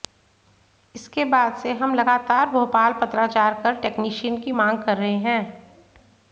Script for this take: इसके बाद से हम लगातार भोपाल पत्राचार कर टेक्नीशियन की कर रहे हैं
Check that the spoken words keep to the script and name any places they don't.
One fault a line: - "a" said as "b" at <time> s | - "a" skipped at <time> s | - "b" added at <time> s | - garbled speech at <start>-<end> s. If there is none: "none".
- "मांग" added at 4.5 s